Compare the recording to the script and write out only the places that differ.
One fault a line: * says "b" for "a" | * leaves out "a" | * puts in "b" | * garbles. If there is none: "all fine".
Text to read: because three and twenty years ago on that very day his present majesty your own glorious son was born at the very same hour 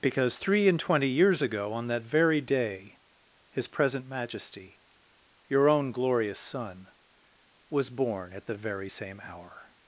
all fine